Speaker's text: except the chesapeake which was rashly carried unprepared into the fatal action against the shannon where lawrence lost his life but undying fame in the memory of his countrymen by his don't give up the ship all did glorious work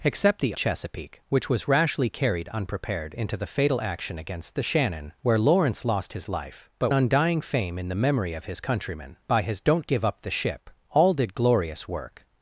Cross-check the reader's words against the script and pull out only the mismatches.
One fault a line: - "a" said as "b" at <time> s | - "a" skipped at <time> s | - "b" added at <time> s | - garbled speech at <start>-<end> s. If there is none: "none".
none